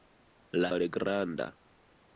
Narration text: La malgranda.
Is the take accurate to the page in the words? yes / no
yes